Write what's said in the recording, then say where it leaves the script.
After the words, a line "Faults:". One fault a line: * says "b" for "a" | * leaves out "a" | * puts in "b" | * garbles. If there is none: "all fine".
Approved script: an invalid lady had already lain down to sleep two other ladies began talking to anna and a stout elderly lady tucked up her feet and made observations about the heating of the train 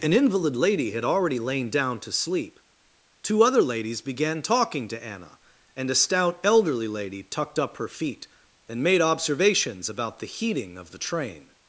an invalid lady had already lain down to sleep two other ladies began talking to anna and a stout elderly lady tucked up her feet and made observations about the heating of the train
Faults:
all fine